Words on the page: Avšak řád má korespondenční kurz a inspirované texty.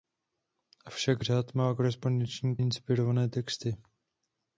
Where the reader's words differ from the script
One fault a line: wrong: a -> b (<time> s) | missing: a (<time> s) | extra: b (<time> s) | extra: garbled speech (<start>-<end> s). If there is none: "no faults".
missing: kurz a (2.6 s)